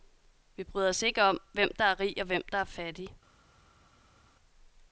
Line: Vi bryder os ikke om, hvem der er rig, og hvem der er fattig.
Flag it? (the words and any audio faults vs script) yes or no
no